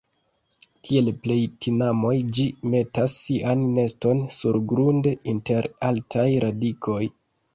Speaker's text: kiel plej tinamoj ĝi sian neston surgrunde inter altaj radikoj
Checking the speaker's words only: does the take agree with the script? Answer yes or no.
no